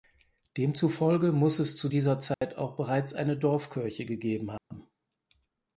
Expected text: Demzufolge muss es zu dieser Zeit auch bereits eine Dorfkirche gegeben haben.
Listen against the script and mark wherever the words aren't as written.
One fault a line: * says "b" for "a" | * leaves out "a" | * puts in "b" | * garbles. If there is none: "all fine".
all fine